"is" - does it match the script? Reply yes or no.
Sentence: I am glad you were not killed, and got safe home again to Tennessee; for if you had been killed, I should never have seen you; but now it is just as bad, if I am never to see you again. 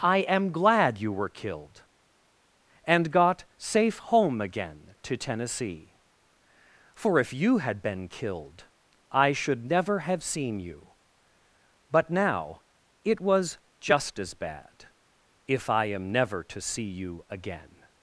no